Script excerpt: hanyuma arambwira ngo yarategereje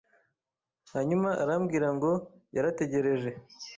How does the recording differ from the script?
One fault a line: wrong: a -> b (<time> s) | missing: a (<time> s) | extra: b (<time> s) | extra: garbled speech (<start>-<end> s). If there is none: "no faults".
no faults